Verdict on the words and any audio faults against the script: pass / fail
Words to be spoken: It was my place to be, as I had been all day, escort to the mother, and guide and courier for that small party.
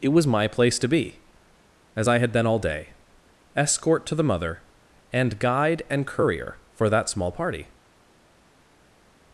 pass